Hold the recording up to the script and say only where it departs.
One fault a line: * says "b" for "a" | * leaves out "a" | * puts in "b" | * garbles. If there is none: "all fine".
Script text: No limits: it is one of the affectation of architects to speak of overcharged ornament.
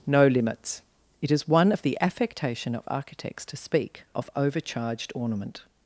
all fine